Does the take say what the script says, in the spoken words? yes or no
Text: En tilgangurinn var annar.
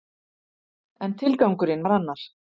yes